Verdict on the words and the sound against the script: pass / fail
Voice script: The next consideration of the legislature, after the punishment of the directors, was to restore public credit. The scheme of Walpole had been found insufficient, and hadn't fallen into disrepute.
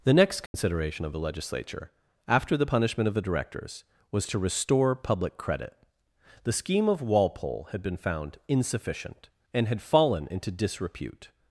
fail